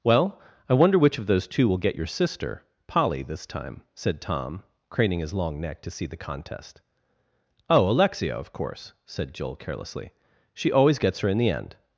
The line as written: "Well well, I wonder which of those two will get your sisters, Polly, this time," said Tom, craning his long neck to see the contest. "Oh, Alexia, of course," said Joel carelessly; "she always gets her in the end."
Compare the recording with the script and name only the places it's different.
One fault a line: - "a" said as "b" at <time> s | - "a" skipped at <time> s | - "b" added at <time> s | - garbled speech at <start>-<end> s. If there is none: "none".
- "well" skipped at 0.4 s
- "sisters" said as "sister" at 2.0 s